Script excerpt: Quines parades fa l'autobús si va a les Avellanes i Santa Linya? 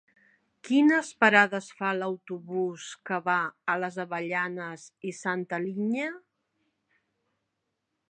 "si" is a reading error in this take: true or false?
true